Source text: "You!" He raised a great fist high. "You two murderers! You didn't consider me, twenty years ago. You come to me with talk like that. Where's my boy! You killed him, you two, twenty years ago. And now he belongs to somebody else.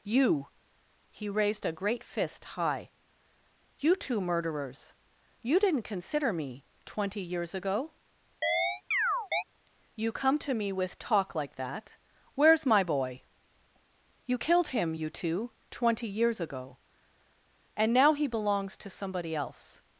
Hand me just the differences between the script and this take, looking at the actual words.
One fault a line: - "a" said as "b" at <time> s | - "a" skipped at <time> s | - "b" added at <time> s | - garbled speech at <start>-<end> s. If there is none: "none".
none